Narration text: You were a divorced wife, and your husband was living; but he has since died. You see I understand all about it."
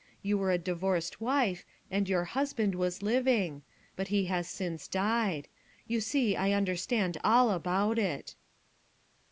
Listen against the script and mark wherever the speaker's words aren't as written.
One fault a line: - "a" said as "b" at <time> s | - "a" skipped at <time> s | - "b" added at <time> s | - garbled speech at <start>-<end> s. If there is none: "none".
none